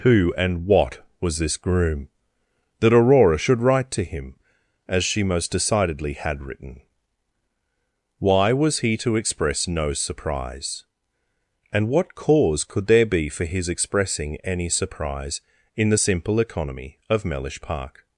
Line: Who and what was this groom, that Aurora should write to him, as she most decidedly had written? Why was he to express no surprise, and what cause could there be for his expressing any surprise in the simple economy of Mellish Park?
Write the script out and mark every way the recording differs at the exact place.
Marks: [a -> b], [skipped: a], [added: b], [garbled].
Who and what was this groom, that Aurora should write to him, as she most decidedly had written? Why was he to express no surprise, and what cause could there be for his expressing any surprise in the simple economy of Mellish Park?